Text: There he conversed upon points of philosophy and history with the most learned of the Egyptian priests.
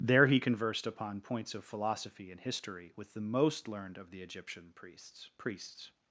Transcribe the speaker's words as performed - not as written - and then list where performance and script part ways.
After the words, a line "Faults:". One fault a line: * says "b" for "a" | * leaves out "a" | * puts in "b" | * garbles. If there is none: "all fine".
There he conversed upon points of philosophy and history with the most learned of the Egyptian priests priests.
Faults:
* puts in "priests"